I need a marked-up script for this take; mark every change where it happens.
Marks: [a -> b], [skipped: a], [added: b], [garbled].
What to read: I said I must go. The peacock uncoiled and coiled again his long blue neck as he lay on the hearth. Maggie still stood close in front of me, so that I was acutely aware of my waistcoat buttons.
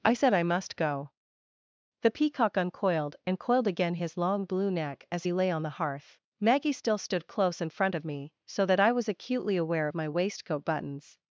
I said I must go. The peacock uncoiled and coiled again his long blue neck as he lay on the hearth. Maggie still stood close in front of me, so that I was acutely aware of my waistcoat buttons.